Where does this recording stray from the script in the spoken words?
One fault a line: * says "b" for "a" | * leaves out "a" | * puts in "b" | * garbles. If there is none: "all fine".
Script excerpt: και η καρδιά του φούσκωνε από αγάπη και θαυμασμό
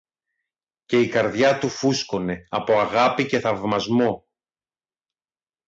all fine